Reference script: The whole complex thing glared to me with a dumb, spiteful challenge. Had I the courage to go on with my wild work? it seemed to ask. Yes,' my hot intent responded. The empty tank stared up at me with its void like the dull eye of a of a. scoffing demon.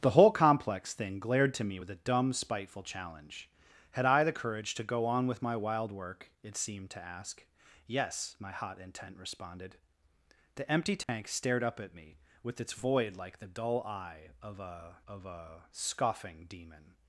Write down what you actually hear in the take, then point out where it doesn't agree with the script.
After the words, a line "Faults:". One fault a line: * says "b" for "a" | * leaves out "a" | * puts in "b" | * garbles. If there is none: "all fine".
The whole complex thing glared to me with a dumb, spiteful challenge. Had I the courage to go on with my wild work? it seemed to ask. Yes,' my hot intent responded. The empty tank stared up at me with its void like the dull eye of a of a. scoffing demon.
Faults:
all fine